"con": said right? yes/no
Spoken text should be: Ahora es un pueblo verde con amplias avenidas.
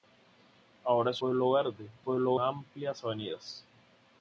no